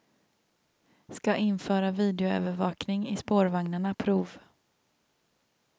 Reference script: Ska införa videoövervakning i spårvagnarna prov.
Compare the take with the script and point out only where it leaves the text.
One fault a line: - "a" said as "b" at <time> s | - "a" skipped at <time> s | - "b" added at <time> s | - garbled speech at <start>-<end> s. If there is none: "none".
none